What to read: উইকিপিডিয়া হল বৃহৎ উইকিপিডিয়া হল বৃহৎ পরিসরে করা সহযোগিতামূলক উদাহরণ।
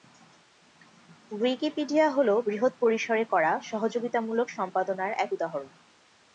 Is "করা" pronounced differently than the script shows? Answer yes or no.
no